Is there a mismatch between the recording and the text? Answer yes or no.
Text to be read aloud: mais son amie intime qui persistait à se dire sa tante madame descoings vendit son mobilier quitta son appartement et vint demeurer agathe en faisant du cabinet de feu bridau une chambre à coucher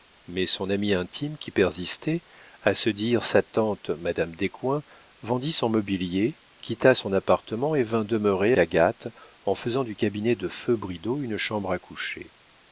no